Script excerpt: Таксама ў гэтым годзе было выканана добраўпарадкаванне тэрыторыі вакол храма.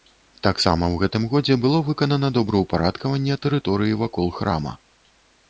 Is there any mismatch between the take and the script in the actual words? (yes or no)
no